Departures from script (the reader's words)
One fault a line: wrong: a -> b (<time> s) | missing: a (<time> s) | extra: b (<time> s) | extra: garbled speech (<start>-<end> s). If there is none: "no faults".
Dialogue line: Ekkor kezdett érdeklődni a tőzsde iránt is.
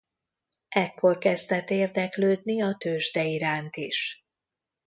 no faults